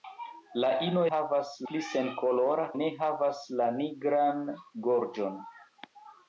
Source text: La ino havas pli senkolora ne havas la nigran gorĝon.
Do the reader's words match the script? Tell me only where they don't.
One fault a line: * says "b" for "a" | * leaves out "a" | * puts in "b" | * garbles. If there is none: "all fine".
all fine